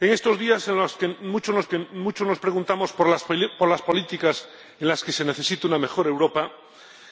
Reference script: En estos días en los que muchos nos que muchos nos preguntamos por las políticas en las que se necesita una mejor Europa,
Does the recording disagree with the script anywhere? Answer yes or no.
no